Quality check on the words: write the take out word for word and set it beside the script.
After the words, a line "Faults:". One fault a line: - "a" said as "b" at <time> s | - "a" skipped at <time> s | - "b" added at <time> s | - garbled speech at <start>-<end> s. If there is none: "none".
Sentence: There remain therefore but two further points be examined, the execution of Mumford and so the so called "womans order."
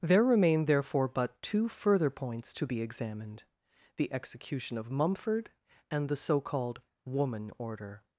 There remain therefore but two further points to be examined, the execution of Mumford and the so called "woman order."
Faults:
- "to" added at 2.5 s
- "so" skipped at 6.1 s
- "womans" said as "woman" at 7.0 s